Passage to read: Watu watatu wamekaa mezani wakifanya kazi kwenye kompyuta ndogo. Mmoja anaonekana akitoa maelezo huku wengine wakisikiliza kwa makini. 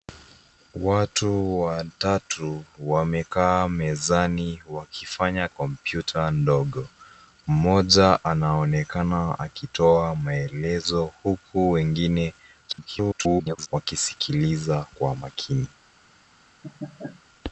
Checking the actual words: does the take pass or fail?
fail